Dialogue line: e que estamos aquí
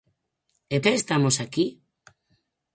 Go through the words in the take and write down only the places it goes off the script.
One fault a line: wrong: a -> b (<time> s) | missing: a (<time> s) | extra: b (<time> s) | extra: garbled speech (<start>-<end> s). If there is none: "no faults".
no faults